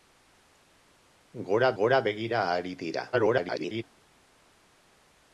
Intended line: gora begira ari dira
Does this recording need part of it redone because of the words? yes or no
yes